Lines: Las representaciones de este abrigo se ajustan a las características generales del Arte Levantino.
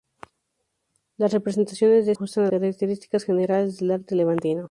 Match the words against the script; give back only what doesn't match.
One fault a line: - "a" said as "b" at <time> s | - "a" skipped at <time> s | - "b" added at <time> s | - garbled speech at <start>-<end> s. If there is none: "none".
- "este abrigo se" skipped at 2.1 s
- "las" skipped at 2.5 s